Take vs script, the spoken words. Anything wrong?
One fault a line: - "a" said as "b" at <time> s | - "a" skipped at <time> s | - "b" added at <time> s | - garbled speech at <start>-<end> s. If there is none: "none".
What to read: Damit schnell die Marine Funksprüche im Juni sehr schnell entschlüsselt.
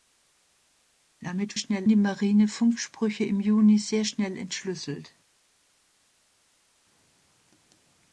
none